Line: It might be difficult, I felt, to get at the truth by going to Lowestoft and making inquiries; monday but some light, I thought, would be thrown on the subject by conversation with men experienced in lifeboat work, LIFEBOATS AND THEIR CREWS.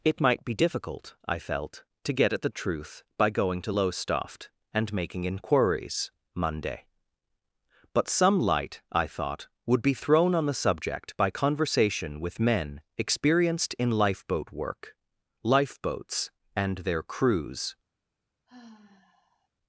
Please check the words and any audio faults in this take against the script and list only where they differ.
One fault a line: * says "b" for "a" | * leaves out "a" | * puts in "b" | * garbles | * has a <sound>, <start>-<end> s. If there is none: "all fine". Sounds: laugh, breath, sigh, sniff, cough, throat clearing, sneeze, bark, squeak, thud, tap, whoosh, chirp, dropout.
* has a sigh, 18.5-19.5 s